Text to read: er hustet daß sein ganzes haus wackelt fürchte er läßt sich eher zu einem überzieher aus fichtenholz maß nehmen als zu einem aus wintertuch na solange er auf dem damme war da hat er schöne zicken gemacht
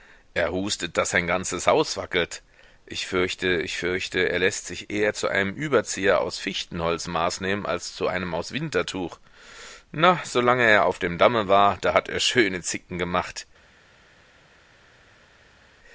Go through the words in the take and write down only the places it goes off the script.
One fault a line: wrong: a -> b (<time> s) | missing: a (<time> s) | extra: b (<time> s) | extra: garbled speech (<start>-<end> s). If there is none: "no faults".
extra: ich fürchte ich (2.9 s)